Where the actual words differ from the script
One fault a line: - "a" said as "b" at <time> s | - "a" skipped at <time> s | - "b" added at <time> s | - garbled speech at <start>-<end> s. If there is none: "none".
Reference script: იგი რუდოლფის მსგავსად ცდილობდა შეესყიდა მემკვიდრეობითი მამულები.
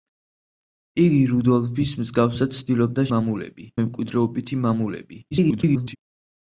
- "შეესყიდა" said as "მამულები" at 3.1 s
- garbled speech at 5.3-6.0 s